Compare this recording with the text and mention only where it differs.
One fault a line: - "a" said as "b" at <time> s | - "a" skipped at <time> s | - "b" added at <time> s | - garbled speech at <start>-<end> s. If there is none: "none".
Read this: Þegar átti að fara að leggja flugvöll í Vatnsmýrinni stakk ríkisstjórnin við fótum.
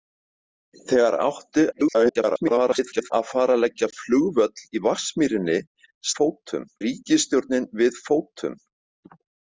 - garbled speech at 1.7-3.1 s
- "stakk" said as "fótum" at 6.2 s